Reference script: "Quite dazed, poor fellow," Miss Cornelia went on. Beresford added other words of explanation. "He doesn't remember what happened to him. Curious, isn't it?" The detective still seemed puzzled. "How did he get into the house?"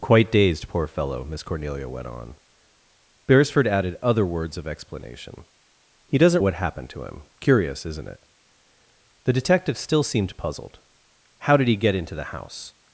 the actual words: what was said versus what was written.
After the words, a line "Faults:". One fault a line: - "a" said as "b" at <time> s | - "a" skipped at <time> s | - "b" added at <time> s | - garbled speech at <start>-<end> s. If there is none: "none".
"Quite dazed, poor fellow," Miss Cornelia went on. Beresford added other words of explanation. "He doesn't what happened to him. Curious, isn't it?" The detective still seemed puzzled. "How did he get into the house?"
Faults:
- "remember" skipped at 6.4 s